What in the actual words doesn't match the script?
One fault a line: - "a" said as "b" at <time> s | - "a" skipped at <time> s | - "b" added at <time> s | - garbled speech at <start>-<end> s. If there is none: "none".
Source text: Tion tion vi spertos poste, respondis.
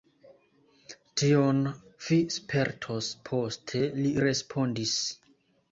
- "tion" skipped at 1.6 s
- "li" added at 4.0 s